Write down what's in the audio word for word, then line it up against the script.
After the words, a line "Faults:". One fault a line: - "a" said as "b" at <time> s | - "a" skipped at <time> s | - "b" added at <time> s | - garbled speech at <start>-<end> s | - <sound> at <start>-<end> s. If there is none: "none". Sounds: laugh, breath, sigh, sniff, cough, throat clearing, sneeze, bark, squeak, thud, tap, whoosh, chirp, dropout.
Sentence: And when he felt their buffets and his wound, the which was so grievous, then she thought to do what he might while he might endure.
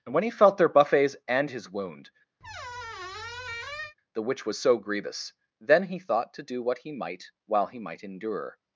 And when he felt their buffets and his wound, the which was so grievous, then he thought to do what he might while he might endure.
Faults:
- squeak at 2.4-3.9 s
- "she" said as "he" at 5.8 s